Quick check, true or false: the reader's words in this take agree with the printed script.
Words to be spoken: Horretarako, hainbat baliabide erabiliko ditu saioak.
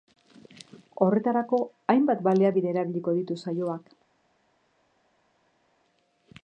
true